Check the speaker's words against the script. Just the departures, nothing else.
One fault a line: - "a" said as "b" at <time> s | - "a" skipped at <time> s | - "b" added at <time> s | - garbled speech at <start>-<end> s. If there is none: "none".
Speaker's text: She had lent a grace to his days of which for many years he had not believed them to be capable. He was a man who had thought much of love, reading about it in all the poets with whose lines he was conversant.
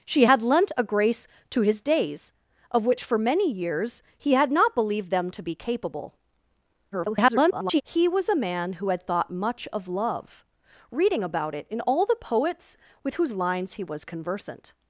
- garbled speech at 6.9-7.8 s